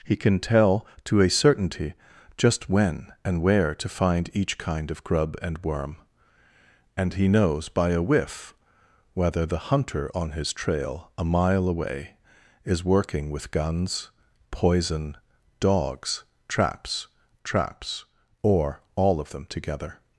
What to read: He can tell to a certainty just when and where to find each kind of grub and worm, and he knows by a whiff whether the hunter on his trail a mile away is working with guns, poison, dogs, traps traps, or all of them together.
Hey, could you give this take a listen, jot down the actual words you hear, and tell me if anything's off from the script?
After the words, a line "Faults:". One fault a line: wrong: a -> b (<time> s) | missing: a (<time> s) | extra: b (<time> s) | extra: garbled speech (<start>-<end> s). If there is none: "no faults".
He can tell to a certainty just when and where to find each kind of grub and worm, and he knows by a whiff whether the hunter on his trail a mile away is working with guns, poison, dogs, traps traps, or all of them together.
Faults:
no faults